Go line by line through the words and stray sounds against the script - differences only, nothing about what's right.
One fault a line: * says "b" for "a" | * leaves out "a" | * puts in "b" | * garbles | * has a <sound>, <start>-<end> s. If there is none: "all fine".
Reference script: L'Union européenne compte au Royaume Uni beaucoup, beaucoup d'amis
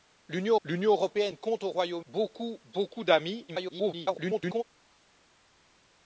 * puts in "l'union"
* leaves out "Uni"
* garbles